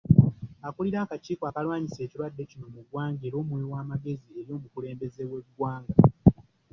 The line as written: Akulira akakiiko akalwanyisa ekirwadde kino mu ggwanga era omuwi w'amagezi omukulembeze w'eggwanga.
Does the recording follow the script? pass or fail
fail